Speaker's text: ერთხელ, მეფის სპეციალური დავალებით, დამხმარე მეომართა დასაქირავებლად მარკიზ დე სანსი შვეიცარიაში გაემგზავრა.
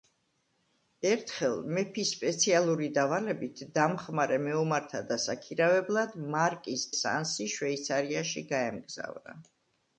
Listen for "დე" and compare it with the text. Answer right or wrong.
wrong